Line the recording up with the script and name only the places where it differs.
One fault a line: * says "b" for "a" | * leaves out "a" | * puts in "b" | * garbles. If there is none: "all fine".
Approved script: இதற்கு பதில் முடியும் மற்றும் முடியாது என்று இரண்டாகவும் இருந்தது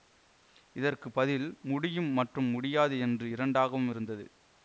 all fine